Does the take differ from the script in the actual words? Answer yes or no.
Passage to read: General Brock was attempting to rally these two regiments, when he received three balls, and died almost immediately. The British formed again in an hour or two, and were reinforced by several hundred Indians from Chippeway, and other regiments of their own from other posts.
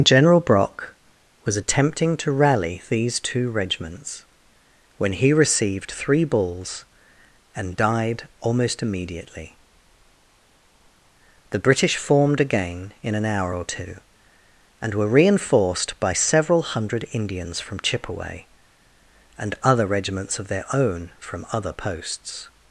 no